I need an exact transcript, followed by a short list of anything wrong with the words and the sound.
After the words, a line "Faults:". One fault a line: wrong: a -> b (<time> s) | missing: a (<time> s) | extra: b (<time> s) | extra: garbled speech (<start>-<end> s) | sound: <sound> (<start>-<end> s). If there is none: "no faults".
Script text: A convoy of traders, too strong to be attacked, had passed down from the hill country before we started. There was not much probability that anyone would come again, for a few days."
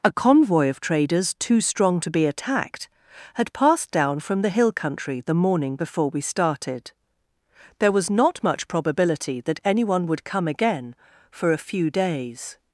A convoy of traders, too strong to be attacked, had passed down from the hill country the morning before we started. There was not much probability that anyone would come again, for a few days."
Faults:
extra: the morning (5.2 s)